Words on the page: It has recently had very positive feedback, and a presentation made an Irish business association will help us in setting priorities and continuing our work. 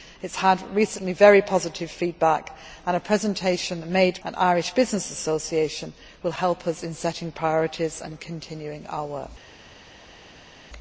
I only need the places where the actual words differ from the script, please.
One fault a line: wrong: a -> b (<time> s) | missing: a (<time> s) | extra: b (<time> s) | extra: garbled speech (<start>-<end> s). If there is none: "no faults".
no faults